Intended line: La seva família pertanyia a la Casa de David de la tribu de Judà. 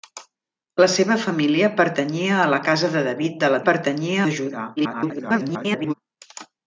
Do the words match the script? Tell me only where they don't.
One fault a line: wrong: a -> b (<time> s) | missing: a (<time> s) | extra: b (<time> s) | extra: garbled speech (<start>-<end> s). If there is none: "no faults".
wrong: tribu -> pertanyia (3.7 s)
extra: garbled speech (4.8-5.9 s)